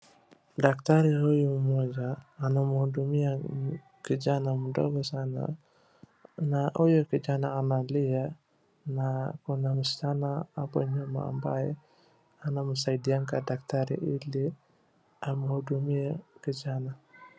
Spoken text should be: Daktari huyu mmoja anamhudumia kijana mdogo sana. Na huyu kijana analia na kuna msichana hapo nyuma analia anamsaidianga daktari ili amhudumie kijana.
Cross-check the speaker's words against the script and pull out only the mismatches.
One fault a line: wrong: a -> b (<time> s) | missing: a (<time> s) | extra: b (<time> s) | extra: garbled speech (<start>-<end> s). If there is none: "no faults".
wrong: analia -> ambaye (11.3 s)